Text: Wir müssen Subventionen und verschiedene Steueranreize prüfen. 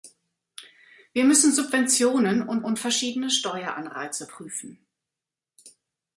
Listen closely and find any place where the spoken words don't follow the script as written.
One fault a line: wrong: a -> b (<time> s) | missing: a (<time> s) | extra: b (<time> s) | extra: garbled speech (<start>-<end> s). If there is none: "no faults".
extra: und (2.6 s)